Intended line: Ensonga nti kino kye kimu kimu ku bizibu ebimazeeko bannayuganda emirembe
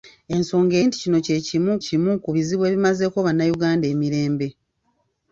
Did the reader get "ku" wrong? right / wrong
right